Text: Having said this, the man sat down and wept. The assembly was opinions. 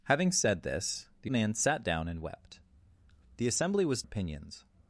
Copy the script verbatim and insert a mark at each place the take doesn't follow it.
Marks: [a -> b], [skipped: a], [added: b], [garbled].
Having said this, the man sat down and wept. The assembly was opinions.